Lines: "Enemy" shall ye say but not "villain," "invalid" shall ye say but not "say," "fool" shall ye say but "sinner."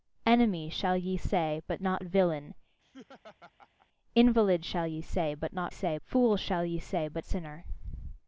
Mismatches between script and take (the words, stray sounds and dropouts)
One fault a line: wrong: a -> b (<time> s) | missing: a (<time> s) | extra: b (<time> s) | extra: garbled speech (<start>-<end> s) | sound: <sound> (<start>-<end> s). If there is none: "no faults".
sound: laugh (2.8-3.9 s)